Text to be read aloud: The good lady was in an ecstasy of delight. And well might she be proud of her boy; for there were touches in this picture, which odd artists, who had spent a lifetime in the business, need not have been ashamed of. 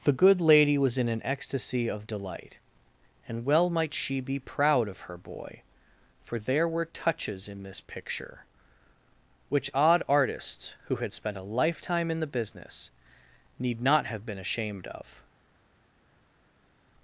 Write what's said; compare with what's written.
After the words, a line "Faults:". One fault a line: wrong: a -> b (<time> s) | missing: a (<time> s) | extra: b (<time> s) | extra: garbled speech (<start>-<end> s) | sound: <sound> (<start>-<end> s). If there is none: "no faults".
The good lady was in an ecstasy of delight. And well might she be proud of her boy; for there were touches in this picture, which odd artists, who had spent a lifetime in the business, need not have been ashamed of.
Faults:
no faults